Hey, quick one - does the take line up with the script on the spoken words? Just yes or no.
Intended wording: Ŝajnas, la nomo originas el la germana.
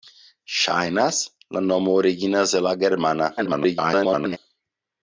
no